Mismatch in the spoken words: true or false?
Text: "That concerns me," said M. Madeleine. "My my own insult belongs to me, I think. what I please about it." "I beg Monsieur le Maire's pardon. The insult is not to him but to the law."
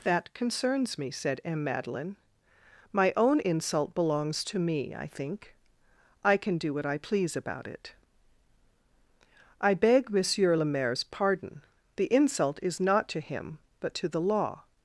true